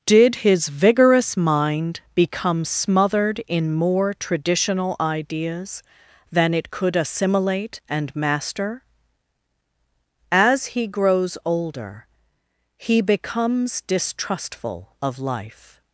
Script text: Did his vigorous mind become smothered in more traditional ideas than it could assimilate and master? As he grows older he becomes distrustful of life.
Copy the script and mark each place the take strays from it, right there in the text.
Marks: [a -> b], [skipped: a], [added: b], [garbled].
Did his vigorous mind become smothered in more traditional ideas than it could assimilate and master? As he grows older he becomes distrustful of life.